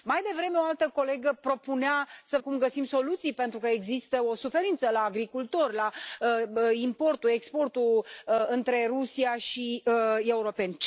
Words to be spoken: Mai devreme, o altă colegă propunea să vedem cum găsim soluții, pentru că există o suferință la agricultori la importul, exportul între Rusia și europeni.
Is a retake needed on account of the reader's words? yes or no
yes